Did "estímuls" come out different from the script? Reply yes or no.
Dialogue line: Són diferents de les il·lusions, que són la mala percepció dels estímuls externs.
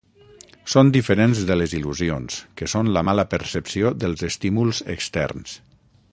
no